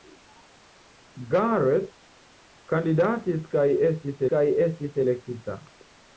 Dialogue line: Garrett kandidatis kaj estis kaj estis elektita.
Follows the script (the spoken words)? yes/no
yes